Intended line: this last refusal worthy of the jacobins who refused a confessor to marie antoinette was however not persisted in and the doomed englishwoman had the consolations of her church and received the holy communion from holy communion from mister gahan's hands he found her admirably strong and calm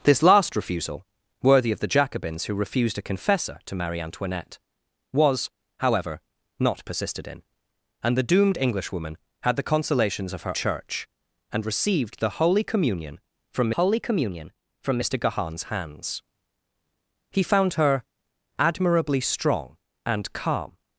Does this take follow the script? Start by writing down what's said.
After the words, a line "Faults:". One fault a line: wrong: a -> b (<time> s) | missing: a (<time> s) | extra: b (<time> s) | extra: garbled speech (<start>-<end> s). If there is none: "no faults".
this last refusal worthy of the jacobins who refused a confessor to marie antoinette was however not persisted in and the doomed englishwoman had the consolations of her church and received the holy communion from holy communion from mister gahan's hands he found her admirably strong and calm
Faults:
no faults